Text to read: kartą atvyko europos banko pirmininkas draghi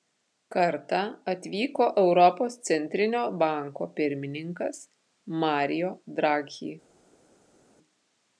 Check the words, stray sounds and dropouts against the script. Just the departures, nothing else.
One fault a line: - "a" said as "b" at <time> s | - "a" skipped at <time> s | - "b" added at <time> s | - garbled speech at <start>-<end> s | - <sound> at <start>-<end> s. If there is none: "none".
- "centrinio" added at 2.7 s
- "mario" added at 5.4 s